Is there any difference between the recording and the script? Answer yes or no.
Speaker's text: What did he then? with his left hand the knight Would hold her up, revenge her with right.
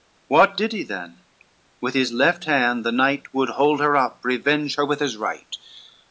yes